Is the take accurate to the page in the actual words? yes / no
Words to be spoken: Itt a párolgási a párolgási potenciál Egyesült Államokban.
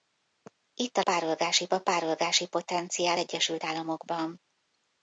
yes